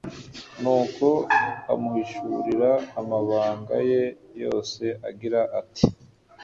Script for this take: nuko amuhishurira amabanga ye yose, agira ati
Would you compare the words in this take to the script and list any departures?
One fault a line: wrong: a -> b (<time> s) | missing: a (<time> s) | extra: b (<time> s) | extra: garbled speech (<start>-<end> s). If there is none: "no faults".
no faults